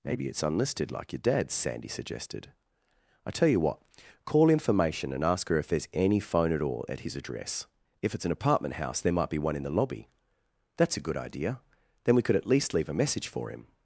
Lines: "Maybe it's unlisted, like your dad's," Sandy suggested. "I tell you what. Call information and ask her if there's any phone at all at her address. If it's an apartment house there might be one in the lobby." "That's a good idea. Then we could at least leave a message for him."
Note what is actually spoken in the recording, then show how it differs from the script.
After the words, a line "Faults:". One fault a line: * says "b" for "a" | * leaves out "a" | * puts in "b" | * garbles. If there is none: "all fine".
"Maybe it's unlisted, like your dad's," Sandy suggested. "I tell you what. Call information and ask her if there's any phone at all at his address. If it's an apartment house there might be one in the lobby." "That's a good idea. Then we could at least leave a message for him."
Faults:
* says "his" for "her"